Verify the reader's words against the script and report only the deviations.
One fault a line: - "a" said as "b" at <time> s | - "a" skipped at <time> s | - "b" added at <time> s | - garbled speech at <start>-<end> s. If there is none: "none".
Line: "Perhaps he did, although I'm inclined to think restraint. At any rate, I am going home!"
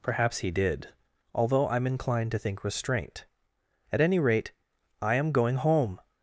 none